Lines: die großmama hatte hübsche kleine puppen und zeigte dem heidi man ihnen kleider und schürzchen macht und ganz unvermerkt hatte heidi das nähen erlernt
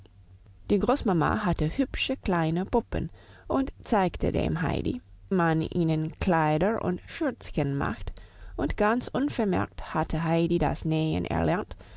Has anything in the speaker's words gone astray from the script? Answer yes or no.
no